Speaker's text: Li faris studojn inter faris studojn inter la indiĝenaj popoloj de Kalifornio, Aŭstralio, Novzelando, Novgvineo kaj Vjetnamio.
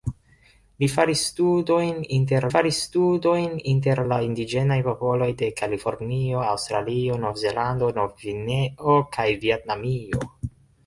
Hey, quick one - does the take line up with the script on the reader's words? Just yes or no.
yes